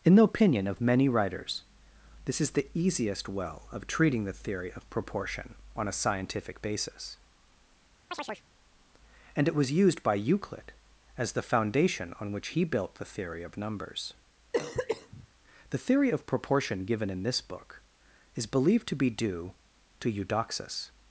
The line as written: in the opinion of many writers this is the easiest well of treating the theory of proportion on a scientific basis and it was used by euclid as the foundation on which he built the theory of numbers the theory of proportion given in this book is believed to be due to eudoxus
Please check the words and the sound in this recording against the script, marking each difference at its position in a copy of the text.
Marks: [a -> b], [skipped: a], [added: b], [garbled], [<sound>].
in the opinion of many writers this is the easiest well of treating the theory of proportion on a scientific basis [chirp] and it was used by euclid as the foundation on which he built the theory of numbers [cough] the theory of proportion given in this book is believed to be due to eudoxus